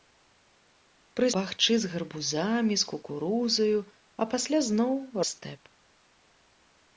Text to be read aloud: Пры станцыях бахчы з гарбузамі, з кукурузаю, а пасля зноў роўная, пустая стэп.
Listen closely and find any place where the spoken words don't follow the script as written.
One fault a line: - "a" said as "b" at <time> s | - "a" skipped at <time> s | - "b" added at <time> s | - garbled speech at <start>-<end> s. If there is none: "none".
- "станцыях" skipped at 1.3 s
- "роўная пустая" skipped at 4.9 s